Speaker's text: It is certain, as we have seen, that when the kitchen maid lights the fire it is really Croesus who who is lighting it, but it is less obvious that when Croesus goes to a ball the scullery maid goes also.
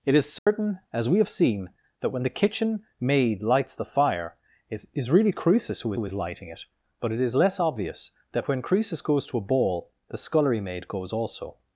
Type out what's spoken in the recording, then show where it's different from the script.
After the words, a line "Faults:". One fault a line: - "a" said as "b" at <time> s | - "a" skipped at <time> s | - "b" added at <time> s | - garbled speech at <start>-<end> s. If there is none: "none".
It is certain, as we have seen, that when the kitchen maid lights the fire it is really Croesus who who is lighting it, but it is less obvious that when Croesus goes to a ball the scullery maid goes also.
Faults:
none